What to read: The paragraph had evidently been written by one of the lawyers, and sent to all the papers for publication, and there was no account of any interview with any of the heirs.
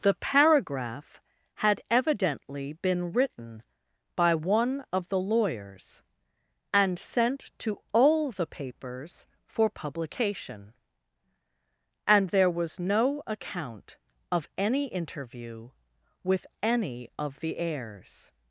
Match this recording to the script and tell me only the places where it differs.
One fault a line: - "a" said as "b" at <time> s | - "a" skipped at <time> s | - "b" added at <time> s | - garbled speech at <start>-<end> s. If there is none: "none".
none